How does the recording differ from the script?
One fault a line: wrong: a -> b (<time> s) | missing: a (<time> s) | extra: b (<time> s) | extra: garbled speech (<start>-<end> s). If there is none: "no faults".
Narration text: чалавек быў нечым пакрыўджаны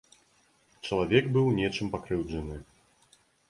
no faults